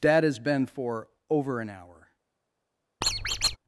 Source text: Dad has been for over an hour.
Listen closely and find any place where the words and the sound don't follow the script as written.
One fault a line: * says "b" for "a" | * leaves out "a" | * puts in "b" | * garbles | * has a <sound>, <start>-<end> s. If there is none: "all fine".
* has a squeak, 3.0-3.6 s